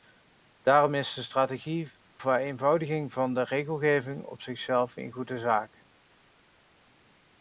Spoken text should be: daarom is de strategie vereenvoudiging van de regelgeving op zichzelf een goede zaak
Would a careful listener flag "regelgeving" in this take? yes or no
no